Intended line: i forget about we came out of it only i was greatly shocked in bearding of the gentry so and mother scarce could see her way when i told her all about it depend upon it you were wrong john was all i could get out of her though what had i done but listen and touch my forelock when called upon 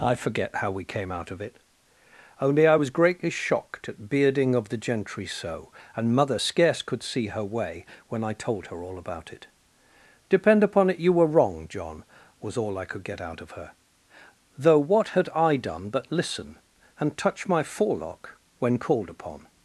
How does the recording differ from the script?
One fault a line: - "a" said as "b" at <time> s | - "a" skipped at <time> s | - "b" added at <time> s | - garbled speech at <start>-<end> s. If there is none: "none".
- "about" said as "how" at 0.6 s
- "in" said as "at" at 3.9 s